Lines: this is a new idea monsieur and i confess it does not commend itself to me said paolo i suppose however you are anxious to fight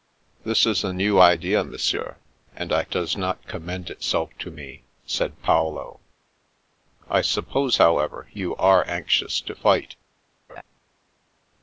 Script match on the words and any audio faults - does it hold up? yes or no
no